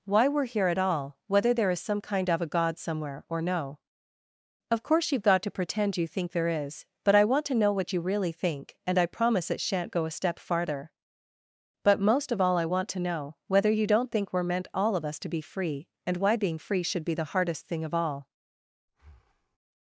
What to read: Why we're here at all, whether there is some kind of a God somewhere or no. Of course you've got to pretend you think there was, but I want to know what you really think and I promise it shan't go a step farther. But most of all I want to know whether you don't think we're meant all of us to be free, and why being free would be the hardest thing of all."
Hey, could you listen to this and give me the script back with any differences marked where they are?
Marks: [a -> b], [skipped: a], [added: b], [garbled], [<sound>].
Why we're here at all, whether there is some kind of a God somewhere or no. Of course you've got to pretend you think there [was, -> is] but I want to know what you really think and I promise it shan't go a step farther. But most of all I want to know whether you don't think we're meant all of us to be free, and why being free [would -> should] be the hardest thing of all." [breath]